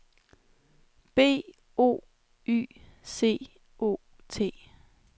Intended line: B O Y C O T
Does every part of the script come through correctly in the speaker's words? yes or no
yes